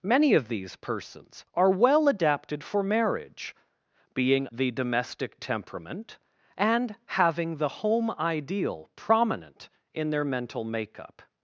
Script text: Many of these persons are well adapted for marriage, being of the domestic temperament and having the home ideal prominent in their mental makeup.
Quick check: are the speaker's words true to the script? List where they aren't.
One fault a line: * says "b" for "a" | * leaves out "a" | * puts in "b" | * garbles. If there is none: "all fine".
* leaves out "of"